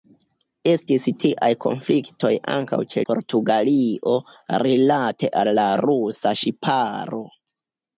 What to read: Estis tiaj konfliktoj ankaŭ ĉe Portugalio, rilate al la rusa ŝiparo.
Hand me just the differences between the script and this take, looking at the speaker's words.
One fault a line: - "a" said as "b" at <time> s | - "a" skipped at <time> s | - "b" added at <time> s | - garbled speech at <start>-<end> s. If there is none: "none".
none